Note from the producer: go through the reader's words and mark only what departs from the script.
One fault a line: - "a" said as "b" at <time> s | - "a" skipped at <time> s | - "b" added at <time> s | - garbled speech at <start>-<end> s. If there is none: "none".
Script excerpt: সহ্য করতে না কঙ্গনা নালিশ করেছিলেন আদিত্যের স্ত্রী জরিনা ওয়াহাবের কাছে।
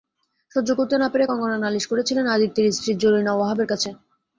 - "পেরে" added at 1.1 s